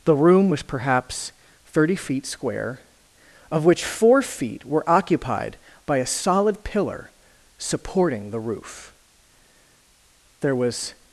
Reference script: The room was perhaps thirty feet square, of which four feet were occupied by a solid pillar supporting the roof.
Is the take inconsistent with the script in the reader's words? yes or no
yes